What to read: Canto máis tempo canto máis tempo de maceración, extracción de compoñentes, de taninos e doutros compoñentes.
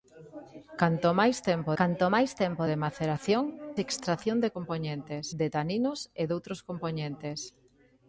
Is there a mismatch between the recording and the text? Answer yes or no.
no